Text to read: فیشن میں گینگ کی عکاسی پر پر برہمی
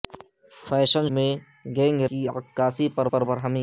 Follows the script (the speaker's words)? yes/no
yes